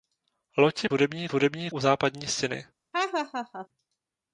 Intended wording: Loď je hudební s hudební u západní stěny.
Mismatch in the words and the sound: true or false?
true